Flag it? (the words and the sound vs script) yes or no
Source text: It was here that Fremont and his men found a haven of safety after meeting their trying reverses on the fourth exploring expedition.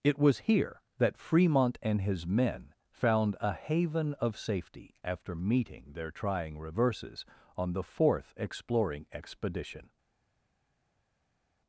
no